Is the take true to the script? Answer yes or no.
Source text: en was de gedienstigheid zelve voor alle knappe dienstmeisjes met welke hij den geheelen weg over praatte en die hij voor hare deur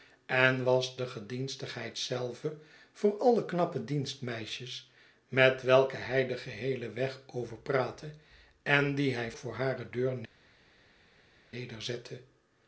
yes